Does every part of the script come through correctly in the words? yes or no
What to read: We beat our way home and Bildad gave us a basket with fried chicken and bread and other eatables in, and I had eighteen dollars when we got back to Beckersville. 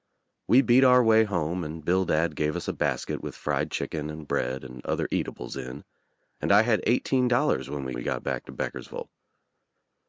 no